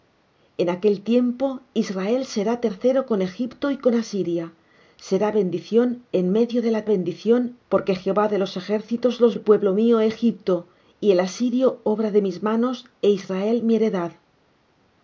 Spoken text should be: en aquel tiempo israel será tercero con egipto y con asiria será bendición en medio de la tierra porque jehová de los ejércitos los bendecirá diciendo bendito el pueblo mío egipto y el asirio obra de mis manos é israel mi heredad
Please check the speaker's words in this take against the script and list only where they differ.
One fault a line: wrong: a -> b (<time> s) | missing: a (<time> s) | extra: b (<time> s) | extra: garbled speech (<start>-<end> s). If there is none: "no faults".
wrong: tierra -> bendición (6.8 s)
missing: bendecirá diciendo bendito (9.4 s)